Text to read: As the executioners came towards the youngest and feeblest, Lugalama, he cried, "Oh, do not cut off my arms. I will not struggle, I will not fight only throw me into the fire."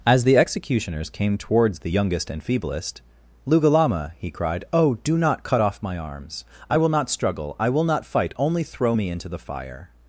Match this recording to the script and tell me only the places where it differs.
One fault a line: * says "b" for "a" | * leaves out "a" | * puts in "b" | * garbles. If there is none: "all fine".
all fine